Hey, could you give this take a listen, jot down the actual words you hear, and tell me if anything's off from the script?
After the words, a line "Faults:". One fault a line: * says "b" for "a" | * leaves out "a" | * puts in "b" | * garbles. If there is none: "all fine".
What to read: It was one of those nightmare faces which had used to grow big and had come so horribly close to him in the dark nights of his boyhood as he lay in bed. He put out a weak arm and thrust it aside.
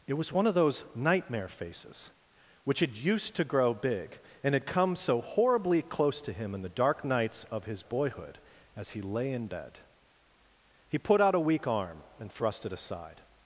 It was one of those nightmare faces which had used to grow big and had come so horribly close to him in the dark nights of his boyhood as he lay in bed. He put out a weak arm and thrust it aside.
Faults:
all fine